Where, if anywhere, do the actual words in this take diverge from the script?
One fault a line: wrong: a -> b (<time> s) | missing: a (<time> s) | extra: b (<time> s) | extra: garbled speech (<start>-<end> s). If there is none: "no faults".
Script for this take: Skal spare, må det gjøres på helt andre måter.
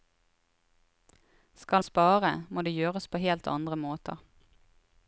no faults